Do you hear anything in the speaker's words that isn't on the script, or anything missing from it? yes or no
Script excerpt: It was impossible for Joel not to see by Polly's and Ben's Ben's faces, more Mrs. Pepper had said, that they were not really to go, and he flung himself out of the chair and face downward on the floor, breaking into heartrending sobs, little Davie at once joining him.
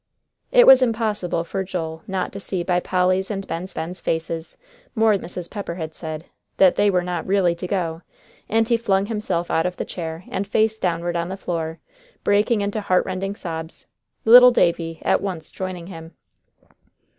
no